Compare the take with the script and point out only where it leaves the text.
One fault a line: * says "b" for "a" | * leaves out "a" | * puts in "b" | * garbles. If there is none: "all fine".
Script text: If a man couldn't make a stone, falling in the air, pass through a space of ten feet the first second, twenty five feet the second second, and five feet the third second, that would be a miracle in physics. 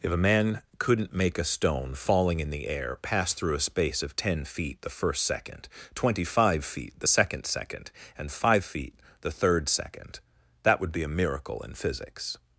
all fine